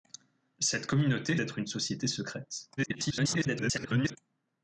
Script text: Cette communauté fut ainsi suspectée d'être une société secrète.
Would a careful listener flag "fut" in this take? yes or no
yes